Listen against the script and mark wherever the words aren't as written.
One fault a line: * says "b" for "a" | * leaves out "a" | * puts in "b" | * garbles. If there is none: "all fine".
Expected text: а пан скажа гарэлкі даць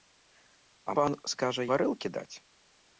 all fine